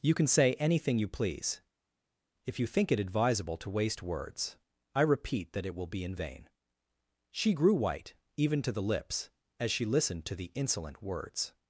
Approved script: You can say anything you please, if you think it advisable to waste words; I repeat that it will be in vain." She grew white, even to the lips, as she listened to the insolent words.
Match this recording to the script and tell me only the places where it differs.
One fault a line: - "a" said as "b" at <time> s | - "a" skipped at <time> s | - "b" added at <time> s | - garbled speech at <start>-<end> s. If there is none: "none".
none